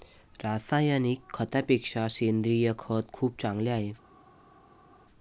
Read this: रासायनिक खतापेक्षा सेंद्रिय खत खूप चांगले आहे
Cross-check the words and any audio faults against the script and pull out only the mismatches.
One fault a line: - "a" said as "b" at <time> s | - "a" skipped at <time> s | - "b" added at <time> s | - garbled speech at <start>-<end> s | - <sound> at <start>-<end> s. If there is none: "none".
none